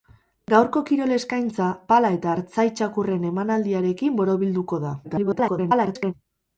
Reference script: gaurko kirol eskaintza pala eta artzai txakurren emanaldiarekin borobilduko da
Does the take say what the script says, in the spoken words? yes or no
no